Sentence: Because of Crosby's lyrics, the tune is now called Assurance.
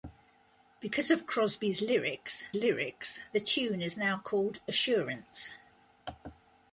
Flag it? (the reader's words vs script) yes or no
yes